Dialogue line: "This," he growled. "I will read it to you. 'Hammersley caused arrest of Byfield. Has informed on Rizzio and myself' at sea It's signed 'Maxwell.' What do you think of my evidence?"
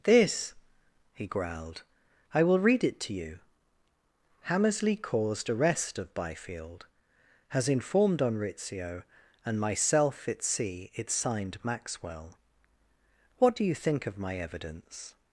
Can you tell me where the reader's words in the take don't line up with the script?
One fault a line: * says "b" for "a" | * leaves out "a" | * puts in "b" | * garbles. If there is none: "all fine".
all fine